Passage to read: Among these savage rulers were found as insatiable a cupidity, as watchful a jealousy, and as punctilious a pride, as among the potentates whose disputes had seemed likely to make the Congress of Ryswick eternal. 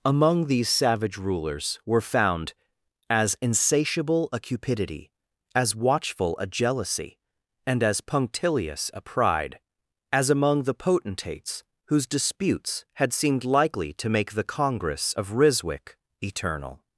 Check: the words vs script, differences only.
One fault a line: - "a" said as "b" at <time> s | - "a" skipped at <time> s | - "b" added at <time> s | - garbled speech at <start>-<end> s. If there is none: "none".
none